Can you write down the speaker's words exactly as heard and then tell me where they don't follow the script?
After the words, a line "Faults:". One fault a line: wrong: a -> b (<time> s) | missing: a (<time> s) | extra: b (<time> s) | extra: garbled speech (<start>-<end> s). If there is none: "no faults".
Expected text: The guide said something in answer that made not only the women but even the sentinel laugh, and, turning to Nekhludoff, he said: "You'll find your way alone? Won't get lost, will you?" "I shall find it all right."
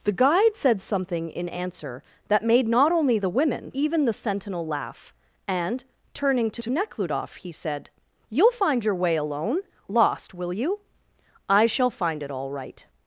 The guide said something in answer that made not only the women even the sentinel laugh, and, turning to to Nekhludoff, he said: "You'll find your way alone? Lost, will you?" "I shall find it all right."
Faults:
missing: but (3.7 s)
extra: to (6.6 s)
missing: Won't get (9.6 s)